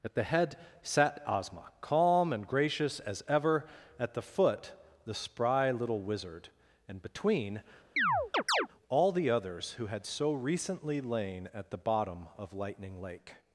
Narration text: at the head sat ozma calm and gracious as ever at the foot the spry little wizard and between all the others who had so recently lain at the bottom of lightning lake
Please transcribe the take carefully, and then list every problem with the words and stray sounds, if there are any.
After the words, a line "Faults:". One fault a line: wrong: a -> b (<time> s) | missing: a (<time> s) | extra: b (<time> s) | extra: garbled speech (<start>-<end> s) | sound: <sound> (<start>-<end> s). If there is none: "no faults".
at the head sat ozma calm and gracious as ever at the foot the spry little wizard and between all the others who had so recently lain at the bottom of lightning lake
Faults:
sound: chirp (8.0-8.7 s)